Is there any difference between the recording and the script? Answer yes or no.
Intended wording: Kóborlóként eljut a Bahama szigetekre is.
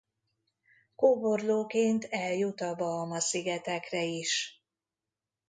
no